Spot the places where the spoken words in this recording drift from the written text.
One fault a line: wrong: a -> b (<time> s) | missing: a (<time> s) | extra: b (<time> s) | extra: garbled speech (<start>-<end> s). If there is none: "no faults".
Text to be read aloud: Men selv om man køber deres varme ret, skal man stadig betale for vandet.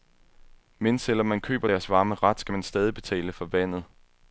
no faults